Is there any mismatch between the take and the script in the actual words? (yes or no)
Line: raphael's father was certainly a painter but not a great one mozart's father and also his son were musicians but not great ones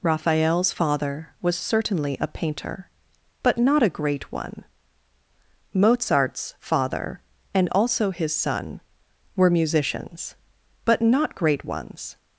no